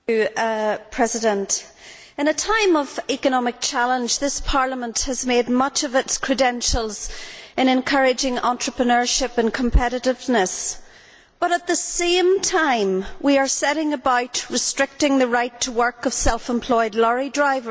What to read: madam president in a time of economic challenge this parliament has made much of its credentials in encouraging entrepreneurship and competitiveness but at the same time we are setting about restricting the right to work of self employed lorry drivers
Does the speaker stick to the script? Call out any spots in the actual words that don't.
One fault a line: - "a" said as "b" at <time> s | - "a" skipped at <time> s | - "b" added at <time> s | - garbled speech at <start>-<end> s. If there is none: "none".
none